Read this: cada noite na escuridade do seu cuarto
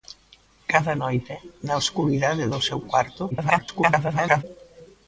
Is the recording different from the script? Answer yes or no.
yes